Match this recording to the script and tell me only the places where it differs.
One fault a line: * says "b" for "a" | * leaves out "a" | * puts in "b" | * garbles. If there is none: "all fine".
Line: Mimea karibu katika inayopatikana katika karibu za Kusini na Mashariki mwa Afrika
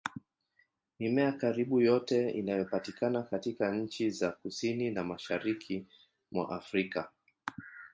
* says "yote" for "katika"
* says "nchi" for "karibu"